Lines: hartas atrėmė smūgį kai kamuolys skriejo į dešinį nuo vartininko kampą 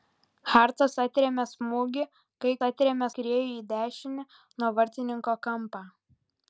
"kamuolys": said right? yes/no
no